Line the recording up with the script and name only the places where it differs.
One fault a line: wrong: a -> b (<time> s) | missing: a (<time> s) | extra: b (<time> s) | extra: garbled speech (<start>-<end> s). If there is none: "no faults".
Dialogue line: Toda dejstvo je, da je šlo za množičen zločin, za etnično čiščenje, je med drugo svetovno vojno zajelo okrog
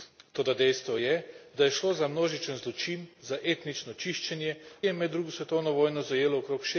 no faults